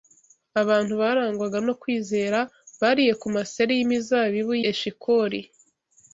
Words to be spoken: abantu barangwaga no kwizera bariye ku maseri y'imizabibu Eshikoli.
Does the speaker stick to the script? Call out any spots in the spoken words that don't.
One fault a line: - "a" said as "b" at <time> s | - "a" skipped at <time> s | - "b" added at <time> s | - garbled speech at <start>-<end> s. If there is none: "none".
none